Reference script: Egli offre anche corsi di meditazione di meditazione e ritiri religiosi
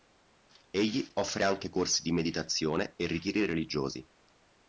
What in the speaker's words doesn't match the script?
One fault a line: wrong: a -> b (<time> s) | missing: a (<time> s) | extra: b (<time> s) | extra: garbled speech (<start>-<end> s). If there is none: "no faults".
missing: di meditazione (2.9 s)